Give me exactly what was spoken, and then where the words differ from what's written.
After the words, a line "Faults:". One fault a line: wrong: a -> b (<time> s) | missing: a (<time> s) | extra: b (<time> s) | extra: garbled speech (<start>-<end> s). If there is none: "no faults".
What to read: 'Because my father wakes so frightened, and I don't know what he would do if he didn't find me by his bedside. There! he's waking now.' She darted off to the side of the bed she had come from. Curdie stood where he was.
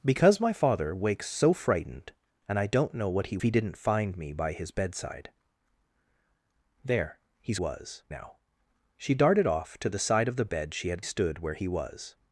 'Because my father wakes so frightened, and I don't know what he he didn't find me by his bedside. There! he's was now.' She darted off to the side of the bed she had stood where he was.
Faults:
missing: would do if (3.4 s)
wrong: waking -> was (7.6 s)
missing: come from Curdie (11.0 s)